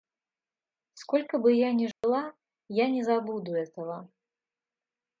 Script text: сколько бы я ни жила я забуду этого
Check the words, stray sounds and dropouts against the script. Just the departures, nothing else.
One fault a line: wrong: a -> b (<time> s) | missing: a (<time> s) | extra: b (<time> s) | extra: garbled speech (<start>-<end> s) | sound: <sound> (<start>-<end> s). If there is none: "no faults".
sound: dropout (1.9-2.0 s)
extra: не (2.9 s)